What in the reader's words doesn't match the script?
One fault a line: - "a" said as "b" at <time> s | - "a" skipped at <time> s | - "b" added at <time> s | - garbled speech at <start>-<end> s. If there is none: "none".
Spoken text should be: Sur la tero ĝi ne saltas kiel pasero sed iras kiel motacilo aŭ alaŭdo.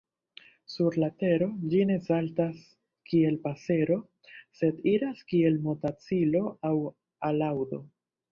none